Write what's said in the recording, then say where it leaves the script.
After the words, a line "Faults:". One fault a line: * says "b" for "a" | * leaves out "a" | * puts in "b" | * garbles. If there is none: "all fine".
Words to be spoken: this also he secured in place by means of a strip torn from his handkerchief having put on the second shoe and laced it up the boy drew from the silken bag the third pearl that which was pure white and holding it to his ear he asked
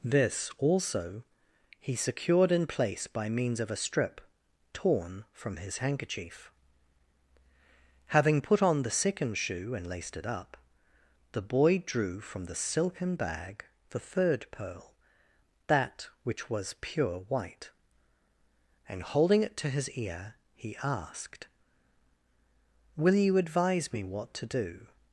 this also he secured in place by means of a strip torn from his handkerchief having put on the second shoe and laced it up the boy drew from the silken bag the third pearl that which was pure white and holding it to his ear he asked will you advise me what to do
Faults:
* puts in "will you advise me what to do"